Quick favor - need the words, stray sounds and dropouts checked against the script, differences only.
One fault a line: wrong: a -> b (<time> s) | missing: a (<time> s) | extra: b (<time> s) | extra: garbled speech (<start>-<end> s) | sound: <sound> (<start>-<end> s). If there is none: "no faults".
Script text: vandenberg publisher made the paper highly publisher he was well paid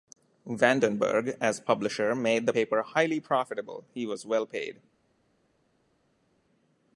extra: as (1.4 s)
wrong: publisher -> profitable (3.2 s)